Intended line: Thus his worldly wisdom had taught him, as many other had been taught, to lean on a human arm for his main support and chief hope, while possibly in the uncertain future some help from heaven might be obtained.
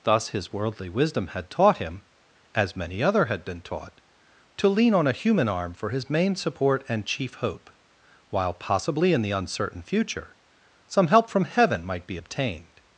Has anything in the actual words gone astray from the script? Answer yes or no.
no